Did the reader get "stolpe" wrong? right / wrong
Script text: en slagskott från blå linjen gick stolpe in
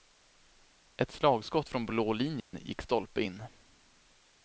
right